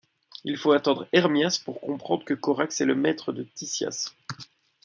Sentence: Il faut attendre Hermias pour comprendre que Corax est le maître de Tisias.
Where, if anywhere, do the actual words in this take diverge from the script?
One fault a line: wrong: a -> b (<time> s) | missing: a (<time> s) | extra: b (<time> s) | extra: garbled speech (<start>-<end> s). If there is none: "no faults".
no faults